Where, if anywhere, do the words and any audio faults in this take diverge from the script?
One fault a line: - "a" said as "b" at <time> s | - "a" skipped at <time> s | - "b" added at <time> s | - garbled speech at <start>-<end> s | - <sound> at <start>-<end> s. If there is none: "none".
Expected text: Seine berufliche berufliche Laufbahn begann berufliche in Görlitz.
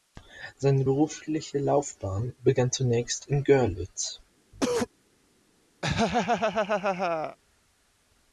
- "berufliche" skipped at 1.6 s
- "berufliche" said as "zunächst" at 2.7 s
- cough at 4.5-4.9 s
- laugh at 5.8-7.4 s